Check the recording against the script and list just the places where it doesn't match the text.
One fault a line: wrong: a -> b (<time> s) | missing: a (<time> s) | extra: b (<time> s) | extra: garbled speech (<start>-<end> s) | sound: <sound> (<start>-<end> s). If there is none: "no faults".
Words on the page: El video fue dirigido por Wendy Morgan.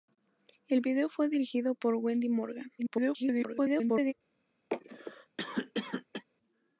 extra: garbled speech (2.8-4.1 s)
sound: cough (4.7-6.2 s)